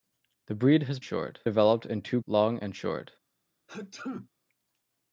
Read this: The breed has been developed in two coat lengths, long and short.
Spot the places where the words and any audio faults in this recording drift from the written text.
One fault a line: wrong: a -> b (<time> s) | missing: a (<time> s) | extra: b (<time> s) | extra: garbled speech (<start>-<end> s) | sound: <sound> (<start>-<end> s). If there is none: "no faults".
wrong: been -> short (1.0 s)
missing: coat lengths (2.2 s)
sound: sneeze (3.7-4.3 s)